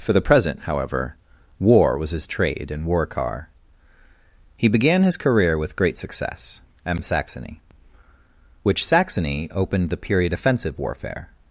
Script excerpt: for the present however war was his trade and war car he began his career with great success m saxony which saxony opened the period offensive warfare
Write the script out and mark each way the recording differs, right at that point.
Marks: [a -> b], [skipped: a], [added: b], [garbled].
for the present however war was his trade and war car he began his career with great success m saxony which saxony opened the period offensive warfare